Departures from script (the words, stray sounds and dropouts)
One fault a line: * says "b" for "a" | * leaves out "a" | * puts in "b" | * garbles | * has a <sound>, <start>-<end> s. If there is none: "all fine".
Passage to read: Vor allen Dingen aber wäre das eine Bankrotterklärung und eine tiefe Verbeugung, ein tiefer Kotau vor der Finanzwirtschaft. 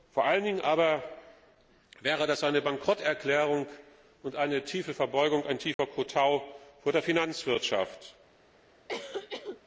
* has a dropout, 5.7-5.8 s
* has a cough, 8.9-9.6 s